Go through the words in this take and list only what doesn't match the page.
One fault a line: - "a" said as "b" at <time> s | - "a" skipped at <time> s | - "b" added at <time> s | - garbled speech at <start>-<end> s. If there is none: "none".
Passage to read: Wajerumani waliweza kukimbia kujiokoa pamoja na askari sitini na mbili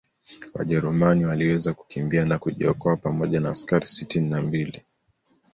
- "na" added at 2.2 s